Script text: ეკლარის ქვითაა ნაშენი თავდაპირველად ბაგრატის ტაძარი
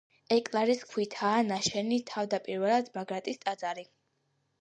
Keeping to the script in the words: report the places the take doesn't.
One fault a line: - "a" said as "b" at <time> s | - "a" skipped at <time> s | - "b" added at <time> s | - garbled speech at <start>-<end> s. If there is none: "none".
none